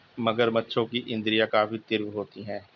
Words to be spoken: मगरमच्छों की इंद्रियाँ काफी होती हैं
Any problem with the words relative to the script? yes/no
yes